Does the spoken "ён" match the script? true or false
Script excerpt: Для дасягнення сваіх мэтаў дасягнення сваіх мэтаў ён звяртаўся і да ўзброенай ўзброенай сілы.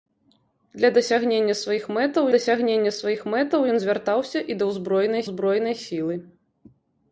true